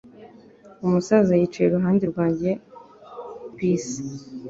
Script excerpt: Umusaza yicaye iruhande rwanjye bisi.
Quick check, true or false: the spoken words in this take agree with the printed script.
true